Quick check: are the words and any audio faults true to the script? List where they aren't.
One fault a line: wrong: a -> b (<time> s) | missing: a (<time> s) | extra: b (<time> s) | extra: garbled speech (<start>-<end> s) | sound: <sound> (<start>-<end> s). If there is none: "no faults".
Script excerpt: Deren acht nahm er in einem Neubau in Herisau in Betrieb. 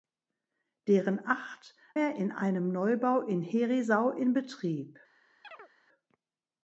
missing: nahm (1.8 s)
sound: chirp (5.4-5.7 s)